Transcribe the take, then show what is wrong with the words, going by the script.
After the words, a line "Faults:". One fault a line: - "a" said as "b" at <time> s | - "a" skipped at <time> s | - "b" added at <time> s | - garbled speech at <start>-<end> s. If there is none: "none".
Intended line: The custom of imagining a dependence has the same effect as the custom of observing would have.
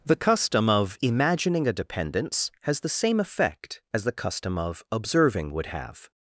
The custom of imagining a dependence has the same effect as the custom of observing would have.
Faults:
none